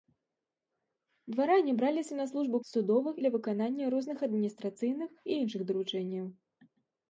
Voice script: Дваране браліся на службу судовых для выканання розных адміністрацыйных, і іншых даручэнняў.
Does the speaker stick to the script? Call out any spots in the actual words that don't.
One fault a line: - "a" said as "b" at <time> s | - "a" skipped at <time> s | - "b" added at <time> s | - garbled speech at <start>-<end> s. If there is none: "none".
none